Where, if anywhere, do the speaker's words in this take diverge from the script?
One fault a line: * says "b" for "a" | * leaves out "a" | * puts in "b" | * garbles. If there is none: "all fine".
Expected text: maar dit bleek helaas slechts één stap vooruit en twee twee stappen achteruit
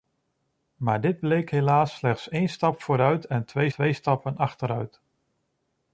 all fine